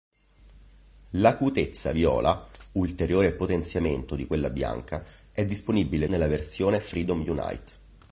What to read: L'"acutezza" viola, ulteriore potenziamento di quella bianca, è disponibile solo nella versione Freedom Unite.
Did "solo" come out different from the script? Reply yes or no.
yes